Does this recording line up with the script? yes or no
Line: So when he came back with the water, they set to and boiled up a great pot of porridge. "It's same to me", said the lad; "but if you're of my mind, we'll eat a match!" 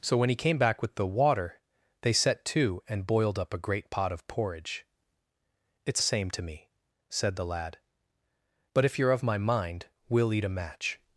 yes